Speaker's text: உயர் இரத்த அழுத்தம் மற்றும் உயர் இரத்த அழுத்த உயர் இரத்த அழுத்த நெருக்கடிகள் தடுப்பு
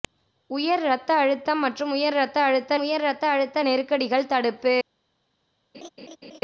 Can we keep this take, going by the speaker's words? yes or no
yes